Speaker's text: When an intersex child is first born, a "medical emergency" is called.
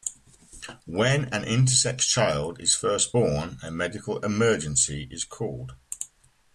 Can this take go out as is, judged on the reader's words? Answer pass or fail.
pass